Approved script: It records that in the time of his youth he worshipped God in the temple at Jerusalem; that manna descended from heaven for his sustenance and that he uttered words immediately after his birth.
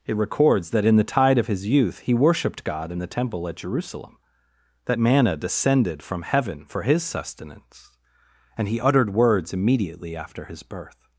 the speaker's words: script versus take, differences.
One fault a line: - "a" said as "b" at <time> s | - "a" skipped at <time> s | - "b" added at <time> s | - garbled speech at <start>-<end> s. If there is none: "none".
- "time" said as "tide" at 1.0 s
- "that" skipped at 8.7 s